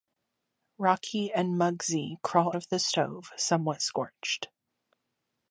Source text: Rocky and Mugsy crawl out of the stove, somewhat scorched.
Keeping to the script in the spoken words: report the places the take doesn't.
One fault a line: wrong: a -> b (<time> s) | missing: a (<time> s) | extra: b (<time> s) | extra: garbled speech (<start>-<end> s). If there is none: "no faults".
missing: out (2.5 s)